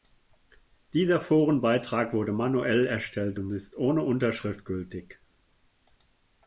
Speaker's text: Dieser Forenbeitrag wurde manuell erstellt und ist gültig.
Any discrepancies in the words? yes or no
yes